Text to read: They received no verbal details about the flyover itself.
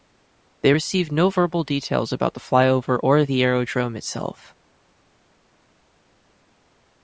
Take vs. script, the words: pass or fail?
fail